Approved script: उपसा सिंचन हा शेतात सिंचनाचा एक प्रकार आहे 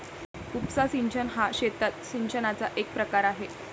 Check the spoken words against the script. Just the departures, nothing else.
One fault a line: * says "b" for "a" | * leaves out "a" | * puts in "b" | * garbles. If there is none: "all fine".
all fine